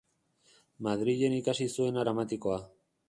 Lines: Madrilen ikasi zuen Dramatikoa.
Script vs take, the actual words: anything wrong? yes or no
no